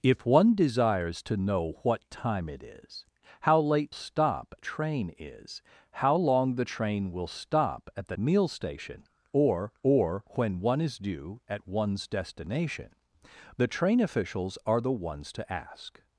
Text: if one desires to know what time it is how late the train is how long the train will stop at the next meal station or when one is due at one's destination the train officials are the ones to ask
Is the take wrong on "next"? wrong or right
wrong